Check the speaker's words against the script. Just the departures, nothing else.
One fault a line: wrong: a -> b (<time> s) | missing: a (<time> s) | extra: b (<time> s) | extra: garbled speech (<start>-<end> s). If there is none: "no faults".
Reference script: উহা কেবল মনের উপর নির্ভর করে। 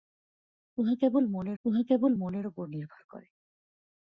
extra: উহা কেবল মনের (1.6 s)